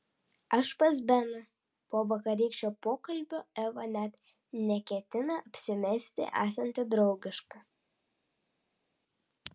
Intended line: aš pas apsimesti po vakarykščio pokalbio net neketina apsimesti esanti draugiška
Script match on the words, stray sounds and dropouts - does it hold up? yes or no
no